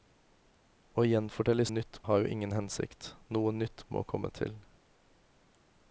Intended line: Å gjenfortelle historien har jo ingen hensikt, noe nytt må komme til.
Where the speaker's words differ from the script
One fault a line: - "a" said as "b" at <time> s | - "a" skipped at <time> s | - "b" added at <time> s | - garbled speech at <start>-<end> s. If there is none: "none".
- "historien" said as "nytt" at 1.7 s